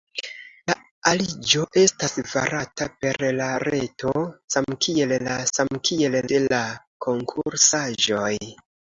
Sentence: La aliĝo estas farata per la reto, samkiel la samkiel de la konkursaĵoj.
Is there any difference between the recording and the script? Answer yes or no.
no